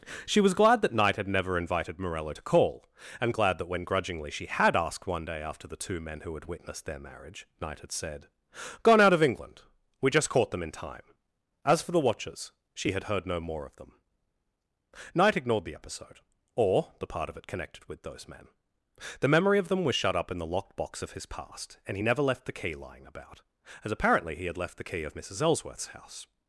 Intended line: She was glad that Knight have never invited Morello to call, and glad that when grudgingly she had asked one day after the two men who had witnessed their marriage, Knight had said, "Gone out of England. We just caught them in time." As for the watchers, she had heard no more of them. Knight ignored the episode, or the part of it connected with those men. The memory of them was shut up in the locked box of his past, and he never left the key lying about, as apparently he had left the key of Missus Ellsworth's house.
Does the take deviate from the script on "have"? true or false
true